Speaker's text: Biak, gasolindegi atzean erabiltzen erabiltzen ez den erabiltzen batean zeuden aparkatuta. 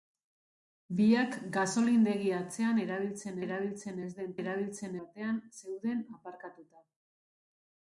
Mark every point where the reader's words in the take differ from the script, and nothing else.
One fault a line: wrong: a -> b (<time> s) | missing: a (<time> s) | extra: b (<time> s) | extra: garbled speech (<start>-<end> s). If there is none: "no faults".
no faults